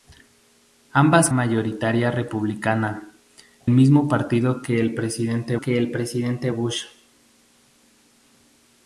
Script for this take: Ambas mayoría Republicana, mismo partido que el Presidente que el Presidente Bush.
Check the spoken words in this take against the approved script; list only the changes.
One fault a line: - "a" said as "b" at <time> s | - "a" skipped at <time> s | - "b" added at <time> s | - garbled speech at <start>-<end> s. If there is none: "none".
none